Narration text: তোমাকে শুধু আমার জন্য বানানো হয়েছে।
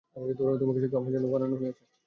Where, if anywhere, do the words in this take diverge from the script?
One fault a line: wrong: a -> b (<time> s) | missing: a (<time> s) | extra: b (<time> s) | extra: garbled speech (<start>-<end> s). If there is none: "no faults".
no faults